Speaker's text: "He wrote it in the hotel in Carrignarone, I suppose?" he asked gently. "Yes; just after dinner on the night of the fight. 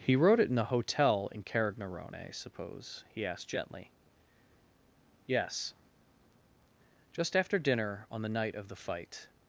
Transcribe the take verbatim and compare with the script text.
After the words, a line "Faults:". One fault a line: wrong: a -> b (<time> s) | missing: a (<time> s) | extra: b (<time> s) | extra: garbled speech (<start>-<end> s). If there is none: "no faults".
"He wrote it in the hotel in Carrignarone, I suppose?" he asked gently. "Yes; just after dinner on the night of the fight.
Faults:
no faults